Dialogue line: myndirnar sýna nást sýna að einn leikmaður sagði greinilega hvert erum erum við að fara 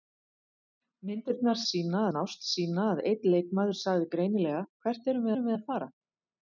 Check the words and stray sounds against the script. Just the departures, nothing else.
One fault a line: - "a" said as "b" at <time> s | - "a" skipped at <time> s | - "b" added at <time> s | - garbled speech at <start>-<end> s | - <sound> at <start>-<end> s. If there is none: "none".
none